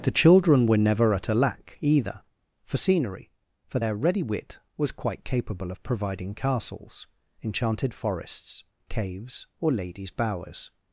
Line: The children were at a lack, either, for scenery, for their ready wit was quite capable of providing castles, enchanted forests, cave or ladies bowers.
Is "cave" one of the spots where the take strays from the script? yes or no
yes